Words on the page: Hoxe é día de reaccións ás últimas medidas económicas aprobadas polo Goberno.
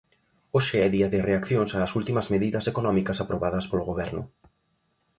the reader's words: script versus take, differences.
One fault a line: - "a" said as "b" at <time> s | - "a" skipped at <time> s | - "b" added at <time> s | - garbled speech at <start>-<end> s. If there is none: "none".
none